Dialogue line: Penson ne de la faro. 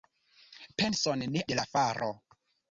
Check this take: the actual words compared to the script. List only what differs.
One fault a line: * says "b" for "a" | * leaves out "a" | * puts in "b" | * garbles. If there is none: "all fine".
all fine